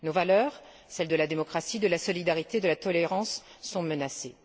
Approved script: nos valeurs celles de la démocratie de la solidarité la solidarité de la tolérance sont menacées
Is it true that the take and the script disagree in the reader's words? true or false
true